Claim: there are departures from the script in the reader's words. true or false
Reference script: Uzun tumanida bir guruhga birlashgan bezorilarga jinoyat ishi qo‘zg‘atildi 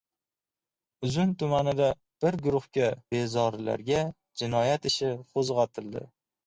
true